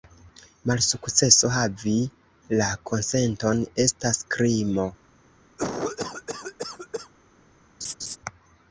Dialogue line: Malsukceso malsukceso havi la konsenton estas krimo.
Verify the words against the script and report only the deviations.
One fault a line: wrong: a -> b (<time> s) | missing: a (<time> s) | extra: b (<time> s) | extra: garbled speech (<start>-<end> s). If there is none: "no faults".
missing: malsukceso (1.5 s)